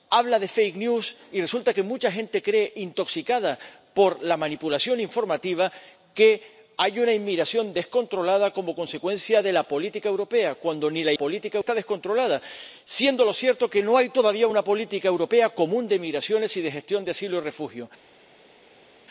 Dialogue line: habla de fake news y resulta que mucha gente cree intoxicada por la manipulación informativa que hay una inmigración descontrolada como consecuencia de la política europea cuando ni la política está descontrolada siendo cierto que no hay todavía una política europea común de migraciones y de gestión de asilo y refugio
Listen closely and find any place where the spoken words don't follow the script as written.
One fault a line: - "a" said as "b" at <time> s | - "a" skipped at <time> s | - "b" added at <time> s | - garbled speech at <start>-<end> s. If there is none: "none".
none